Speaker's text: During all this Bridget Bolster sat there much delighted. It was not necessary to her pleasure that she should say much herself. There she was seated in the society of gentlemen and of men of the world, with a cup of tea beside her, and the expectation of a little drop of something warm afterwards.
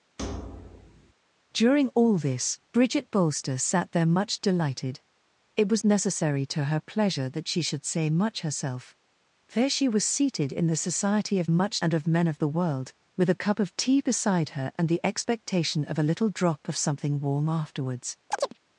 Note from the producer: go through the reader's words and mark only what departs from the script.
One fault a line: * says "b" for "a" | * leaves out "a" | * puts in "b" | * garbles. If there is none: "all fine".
* leaves out "not"
* says "much" for "gentlemen"